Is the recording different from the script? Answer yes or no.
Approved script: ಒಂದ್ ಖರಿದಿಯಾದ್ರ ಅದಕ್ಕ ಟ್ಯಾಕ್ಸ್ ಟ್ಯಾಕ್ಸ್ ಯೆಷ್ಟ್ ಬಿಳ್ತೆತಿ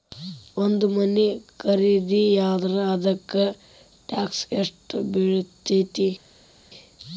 yes